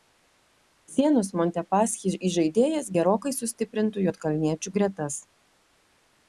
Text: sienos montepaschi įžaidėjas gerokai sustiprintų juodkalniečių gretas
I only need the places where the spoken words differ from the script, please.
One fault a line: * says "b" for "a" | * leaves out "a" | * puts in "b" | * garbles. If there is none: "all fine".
all fine